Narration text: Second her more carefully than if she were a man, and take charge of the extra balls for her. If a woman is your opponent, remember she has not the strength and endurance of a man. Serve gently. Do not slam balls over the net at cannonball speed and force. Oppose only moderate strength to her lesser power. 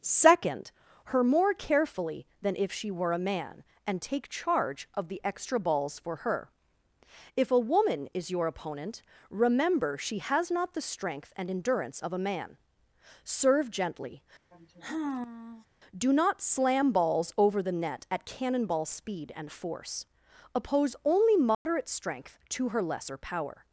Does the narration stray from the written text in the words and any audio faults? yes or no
yes